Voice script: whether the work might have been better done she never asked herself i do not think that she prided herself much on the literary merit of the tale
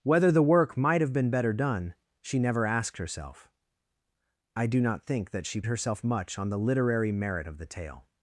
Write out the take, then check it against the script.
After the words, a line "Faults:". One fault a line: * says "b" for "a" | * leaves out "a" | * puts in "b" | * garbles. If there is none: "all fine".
whether the work might have been better done she never asked herself i do not think that she herself much on the literary merit of the tale
Faults:
* leaves out "prided"